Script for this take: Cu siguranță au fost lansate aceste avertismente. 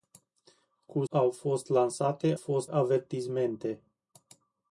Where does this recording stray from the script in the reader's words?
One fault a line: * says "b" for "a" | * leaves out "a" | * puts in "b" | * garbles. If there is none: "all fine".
* leaves out "siguranță"
* says "fost" for "aceste"